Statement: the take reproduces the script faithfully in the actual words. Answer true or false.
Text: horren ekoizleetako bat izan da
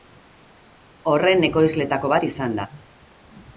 true